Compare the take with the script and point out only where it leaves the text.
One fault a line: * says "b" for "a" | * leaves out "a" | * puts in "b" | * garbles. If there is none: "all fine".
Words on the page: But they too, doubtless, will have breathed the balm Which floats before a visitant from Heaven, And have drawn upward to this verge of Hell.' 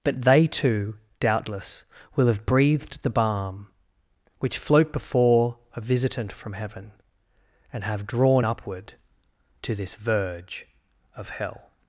* says "float" for "floats"